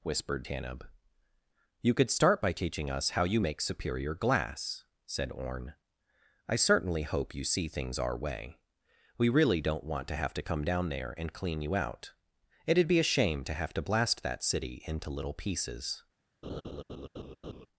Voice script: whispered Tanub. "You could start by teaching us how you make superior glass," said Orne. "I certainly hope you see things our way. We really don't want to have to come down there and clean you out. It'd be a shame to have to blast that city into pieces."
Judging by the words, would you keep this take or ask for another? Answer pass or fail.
fail